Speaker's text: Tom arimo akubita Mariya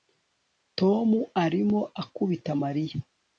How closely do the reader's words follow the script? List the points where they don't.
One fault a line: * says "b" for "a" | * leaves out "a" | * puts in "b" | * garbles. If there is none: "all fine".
all fine